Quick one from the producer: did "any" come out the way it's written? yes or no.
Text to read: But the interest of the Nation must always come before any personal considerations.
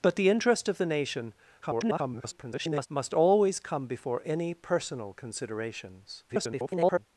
yes